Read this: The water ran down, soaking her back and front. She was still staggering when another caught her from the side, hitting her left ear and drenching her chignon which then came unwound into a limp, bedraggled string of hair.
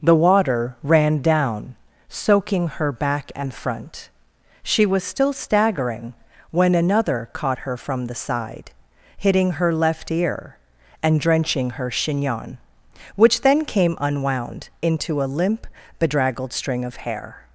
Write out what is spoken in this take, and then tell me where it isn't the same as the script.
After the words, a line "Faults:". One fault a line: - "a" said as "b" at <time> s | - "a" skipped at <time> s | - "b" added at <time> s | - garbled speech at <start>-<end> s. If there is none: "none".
The water ran down, soaking her back and front. She was still staggering when another caught her from the side, hitting her left ear and drenching her chignon which then came unwound into a limp, bedraggled string of hair.
Faults:
none